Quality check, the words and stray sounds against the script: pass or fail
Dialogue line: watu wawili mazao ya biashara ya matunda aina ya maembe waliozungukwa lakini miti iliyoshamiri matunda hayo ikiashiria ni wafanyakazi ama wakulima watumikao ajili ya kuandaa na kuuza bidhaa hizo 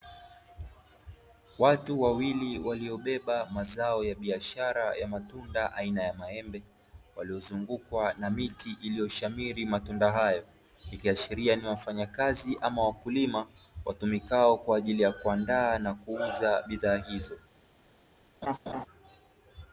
fail